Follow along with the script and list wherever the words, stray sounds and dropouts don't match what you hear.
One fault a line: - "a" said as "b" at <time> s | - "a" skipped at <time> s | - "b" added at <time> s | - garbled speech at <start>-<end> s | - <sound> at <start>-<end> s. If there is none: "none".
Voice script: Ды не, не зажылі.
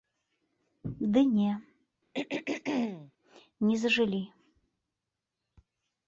- throat clearing at 2.1-3.1 s